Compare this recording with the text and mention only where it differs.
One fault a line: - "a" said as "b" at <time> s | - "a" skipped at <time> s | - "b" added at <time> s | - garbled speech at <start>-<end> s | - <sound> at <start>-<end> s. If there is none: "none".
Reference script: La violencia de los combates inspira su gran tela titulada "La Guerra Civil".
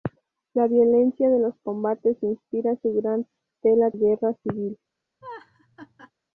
- "titulada La" skipped at 3.9 s
- laugh at 5.2-6.1 s